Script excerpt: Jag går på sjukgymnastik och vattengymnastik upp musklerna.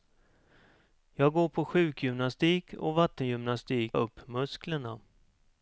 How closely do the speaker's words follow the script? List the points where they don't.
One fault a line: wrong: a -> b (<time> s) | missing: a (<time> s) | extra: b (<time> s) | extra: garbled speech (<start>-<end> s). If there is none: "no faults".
no faults